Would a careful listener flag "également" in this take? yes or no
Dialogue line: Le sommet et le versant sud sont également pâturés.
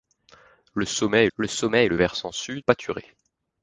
yes